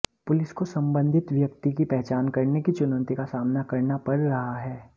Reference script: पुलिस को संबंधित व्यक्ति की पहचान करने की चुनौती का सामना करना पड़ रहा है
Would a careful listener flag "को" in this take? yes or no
no